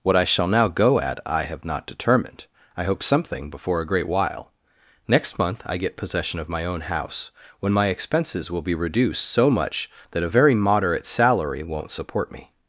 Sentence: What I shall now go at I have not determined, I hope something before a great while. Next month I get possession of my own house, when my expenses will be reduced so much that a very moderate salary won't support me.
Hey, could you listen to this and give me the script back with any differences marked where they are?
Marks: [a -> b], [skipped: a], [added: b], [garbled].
What I shall now go at I have not determined, I hope something before a great while. Next month I get possession of my own house, when my expenses will be reduced so much that a very moderate salary won't support me.